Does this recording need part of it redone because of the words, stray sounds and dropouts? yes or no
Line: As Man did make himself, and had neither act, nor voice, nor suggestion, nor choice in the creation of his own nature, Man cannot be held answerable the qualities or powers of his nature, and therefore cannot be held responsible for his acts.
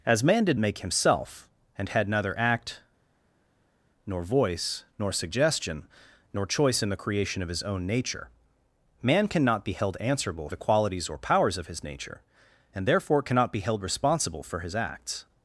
no